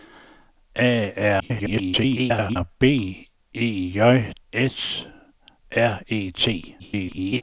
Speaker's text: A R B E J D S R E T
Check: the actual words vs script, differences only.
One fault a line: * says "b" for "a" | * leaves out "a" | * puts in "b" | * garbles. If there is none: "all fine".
* garbles
* leaves out "D"
* garbles